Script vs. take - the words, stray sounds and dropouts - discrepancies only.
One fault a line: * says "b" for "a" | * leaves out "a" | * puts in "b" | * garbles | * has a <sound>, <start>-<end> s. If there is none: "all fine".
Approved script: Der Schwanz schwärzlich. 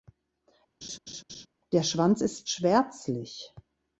* has a laugh, 0.8-1.5 s
* puts in "ist"